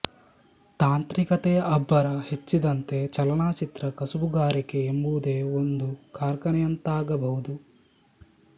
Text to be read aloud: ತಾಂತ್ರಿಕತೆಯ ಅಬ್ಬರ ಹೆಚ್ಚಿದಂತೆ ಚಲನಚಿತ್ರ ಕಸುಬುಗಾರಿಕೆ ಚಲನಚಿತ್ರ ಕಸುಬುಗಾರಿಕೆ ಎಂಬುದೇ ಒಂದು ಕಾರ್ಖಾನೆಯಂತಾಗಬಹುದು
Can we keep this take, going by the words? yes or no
no